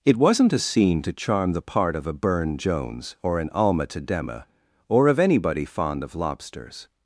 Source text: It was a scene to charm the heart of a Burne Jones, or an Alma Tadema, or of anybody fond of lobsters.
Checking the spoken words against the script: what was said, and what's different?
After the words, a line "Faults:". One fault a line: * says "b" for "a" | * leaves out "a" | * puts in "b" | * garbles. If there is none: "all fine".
It wasn't a scene to charm the part of a Burne Jones, or an Alma Tadema, or of anybody fond of lobsters.
Faults:
* says "wasn't" for "was"
* says "part" for "heart"